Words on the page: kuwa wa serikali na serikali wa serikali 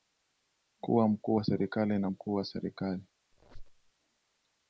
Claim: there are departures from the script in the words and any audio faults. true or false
true